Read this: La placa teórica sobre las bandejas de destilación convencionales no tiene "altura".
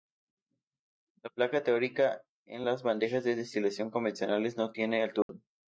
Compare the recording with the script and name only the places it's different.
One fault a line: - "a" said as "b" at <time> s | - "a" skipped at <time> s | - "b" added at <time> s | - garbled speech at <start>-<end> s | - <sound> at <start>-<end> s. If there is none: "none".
- "sobre" said as "en" at 2.4 s
- dropout at 5.2-5.3 s